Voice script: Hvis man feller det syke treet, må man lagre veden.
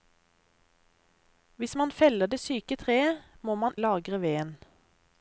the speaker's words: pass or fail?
pass